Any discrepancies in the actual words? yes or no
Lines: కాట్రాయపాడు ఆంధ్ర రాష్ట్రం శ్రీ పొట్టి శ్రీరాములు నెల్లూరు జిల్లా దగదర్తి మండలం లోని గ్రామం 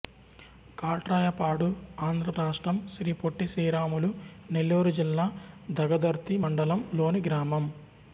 no